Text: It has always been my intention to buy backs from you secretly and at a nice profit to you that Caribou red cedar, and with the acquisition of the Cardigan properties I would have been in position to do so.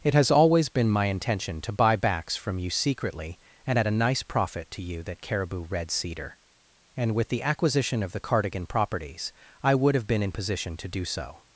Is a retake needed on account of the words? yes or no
no